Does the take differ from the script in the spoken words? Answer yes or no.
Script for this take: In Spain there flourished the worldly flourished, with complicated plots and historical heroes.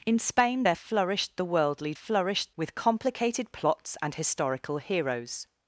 no